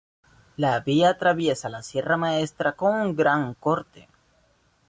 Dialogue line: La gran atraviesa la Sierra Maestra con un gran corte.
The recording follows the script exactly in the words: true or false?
false